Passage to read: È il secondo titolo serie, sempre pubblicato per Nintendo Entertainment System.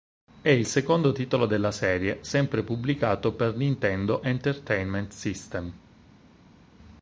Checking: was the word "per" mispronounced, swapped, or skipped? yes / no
no